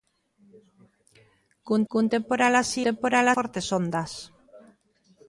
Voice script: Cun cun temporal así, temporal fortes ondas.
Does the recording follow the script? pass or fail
pass